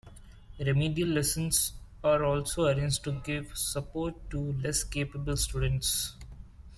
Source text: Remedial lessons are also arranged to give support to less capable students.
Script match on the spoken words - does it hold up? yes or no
yes